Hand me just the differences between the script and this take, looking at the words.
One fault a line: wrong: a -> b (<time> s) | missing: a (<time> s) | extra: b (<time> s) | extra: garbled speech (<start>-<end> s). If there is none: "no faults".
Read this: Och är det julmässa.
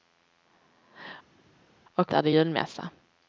no faults